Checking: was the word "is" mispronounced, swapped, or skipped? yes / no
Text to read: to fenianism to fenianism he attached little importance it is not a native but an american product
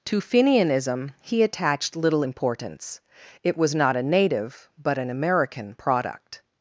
yes